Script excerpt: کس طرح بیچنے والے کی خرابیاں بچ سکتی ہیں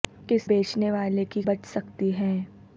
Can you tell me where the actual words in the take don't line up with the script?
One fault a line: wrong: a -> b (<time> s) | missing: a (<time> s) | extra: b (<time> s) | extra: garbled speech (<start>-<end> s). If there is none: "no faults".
missing: طرح (0.5 s)
missing: خرابیاں (1.4 s)